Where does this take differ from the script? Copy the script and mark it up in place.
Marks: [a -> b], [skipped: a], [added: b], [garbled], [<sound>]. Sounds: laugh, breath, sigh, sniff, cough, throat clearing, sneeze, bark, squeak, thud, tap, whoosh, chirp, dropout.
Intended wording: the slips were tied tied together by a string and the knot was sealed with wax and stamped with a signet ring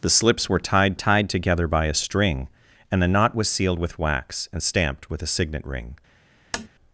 the slips were tied tied together by a string and the knot was sealed with wax and stamped with a signet ring [tap]